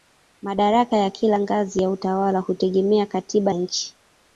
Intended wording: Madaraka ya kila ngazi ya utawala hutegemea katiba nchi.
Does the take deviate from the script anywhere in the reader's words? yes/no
no